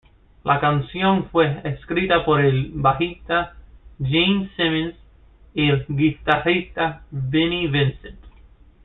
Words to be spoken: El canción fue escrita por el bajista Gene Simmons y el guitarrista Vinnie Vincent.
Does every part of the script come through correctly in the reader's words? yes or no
no